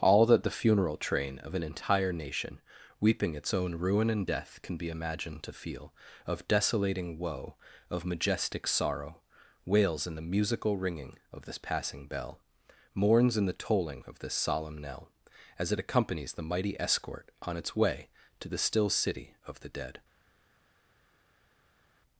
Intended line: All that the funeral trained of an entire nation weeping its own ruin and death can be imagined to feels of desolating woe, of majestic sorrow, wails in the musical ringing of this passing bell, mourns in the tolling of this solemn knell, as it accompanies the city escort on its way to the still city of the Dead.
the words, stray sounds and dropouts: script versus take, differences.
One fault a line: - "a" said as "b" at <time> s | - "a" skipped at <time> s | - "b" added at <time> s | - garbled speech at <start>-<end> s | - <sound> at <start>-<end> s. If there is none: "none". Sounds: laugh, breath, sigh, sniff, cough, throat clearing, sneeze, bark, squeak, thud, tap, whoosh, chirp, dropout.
- "trained" said as "train" at 1.0 s
- "feels" said as "feel" at 5.5 s
- "city" said as "mighty" at 16.4 s